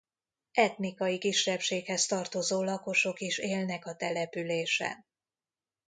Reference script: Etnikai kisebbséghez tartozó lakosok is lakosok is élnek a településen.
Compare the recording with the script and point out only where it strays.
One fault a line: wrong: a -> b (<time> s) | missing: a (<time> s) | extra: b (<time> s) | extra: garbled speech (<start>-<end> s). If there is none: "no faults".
missing: lakosok is (3.4 s)